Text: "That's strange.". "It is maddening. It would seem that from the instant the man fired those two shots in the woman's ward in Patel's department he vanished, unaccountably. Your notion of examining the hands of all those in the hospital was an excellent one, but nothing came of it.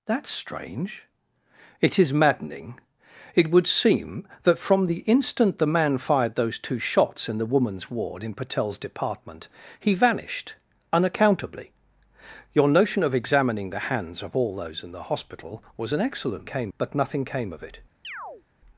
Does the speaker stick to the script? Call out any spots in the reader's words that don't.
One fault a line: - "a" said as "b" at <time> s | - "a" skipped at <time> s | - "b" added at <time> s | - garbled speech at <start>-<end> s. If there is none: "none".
- "one" said as "came" at 16.5 s